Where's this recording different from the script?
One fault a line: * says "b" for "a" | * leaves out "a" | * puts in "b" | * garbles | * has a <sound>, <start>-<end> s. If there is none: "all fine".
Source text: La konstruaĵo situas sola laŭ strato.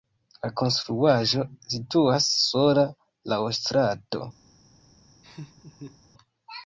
* has a laugh, 5.2-6.0 s